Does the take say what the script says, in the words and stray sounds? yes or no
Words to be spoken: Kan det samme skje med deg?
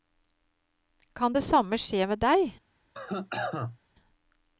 no